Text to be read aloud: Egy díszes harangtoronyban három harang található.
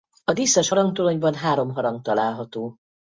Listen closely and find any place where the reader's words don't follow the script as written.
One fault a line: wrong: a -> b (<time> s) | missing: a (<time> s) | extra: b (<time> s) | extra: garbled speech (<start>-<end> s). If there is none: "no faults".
wrong: Egy -> A (0.2 s)